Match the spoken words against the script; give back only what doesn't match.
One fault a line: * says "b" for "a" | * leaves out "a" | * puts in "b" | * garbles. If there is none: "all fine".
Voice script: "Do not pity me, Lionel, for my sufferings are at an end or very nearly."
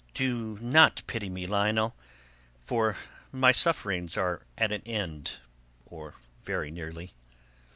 all fine